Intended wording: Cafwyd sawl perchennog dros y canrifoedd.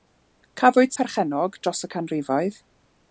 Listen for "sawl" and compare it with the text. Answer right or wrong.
wrong